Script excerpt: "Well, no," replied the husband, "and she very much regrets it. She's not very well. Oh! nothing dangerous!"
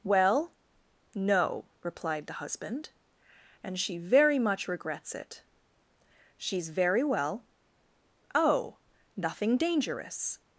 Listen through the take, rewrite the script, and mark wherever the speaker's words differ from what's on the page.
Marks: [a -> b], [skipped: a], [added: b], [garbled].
"Well, no," replied the husband, "and she very much regrets it. She's [skipped: not] very well. Oh! nothing dangerous!"